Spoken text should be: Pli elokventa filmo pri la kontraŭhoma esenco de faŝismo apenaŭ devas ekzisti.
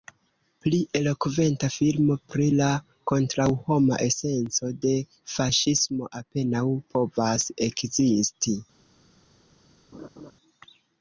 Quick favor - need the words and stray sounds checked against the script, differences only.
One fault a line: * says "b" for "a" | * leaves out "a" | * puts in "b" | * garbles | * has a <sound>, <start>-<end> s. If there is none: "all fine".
* says "povas" for "devas"
* has a laugh, 9.9-10.3 s